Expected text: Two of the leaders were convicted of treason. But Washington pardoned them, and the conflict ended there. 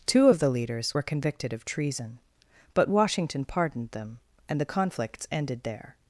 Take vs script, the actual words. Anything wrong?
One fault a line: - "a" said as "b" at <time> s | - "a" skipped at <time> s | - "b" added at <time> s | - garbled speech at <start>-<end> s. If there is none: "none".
- "conflict" said as "conflicts" at 4.7 s